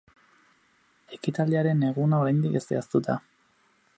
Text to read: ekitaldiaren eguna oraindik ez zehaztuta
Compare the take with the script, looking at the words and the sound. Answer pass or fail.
pass